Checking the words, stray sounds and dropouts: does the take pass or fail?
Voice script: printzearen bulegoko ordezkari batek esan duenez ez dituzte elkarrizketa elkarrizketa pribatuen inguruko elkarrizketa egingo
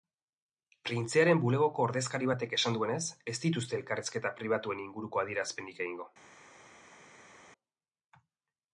fail